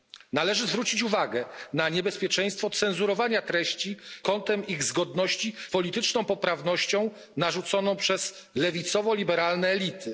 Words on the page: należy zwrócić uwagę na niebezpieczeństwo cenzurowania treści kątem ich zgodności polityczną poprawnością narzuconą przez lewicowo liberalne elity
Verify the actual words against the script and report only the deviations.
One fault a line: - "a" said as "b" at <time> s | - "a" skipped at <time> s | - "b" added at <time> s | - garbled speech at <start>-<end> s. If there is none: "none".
none